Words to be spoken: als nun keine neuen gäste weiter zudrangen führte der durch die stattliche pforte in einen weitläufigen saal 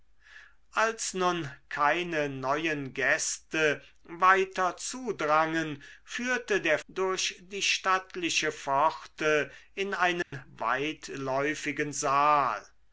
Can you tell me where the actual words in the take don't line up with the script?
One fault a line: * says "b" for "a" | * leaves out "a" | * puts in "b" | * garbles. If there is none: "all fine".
all fine